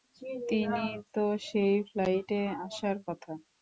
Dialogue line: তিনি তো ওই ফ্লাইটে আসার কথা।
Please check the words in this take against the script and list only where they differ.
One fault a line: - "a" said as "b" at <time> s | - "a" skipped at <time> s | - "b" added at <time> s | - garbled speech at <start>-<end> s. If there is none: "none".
- "ওই" said as "সেই" at 1.5 s